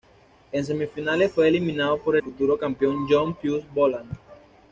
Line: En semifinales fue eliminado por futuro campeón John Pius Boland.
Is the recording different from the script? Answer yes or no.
no